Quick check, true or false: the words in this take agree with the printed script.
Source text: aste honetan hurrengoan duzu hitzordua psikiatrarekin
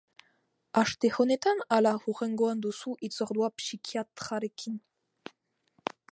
false